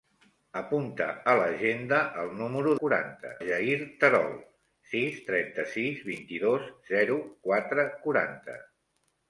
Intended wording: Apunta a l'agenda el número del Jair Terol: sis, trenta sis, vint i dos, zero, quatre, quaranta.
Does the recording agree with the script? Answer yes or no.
no